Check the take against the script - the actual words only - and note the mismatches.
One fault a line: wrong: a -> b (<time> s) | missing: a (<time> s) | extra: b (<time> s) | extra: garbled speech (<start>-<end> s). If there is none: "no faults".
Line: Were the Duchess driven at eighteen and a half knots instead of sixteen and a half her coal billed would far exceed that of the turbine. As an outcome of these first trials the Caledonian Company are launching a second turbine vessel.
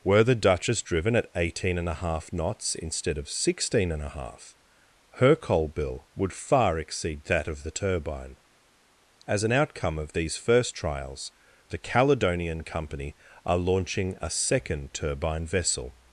wrong: billed -> bill (5.7 s)